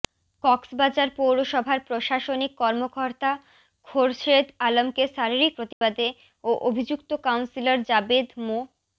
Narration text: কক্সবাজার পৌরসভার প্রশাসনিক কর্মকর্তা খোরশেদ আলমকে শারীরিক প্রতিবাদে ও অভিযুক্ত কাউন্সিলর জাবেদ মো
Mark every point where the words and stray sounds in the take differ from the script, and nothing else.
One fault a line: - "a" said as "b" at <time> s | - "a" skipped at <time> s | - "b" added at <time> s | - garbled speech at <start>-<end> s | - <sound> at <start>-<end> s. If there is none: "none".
- dropout at 5.7-5.8 s